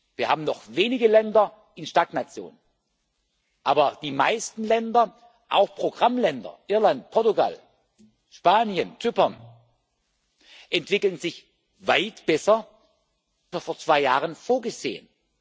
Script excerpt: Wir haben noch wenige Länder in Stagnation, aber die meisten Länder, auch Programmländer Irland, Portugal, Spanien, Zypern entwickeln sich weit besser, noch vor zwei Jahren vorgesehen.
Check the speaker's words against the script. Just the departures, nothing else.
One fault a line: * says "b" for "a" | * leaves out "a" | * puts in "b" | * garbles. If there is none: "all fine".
all fine